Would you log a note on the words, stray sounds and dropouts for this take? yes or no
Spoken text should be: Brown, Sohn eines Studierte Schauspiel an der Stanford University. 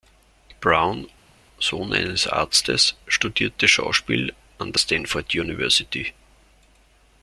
yes